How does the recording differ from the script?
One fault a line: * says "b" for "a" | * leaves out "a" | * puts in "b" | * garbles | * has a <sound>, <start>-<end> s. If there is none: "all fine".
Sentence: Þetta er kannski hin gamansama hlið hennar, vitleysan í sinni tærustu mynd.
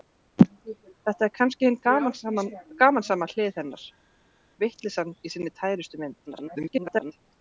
* garbles